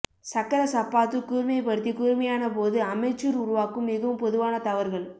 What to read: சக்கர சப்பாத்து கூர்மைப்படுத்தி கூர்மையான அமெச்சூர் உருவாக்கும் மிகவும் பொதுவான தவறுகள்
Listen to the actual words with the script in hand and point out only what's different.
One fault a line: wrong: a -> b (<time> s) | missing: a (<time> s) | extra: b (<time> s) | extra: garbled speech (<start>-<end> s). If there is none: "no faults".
extra: போது (2.5 s)